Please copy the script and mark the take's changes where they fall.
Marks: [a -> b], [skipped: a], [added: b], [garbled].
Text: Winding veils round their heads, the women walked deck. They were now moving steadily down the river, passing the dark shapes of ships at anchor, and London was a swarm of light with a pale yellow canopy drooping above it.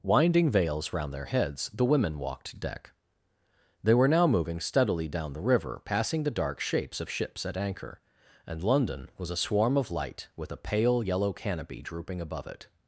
Winding veils round their heads, the women walked deck. They were now moving steadily down the river, passing the dark shapes of ships at anchor, and London was a swarm of light with a pale yellow canopy drooping above it.